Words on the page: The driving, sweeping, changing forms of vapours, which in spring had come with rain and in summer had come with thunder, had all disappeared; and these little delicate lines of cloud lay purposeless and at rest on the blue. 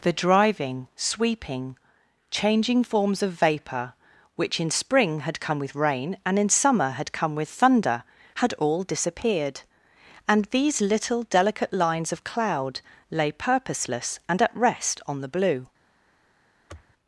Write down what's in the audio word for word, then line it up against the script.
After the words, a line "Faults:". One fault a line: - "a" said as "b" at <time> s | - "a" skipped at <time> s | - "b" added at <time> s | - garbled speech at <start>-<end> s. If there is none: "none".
The driving, sweeping, changing forms of vapour, which in spring had come with rain and in summer had come with thunder, had all disappeared; and these little delicate lines of cloud lay purposeless and at rest on the blue.
Faults:
- "vapours" said as "vapour" at 3.3 s